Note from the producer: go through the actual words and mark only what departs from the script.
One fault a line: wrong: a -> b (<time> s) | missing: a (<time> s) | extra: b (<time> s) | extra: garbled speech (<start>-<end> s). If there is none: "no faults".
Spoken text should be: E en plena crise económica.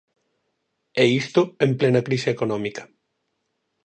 extra: isto (1.2 s)